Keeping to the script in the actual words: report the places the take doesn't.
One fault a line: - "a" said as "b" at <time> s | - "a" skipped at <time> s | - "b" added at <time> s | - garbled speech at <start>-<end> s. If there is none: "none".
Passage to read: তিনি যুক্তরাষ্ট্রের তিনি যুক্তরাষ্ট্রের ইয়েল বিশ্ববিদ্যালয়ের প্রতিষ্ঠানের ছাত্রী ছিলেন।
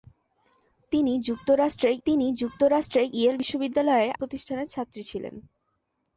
none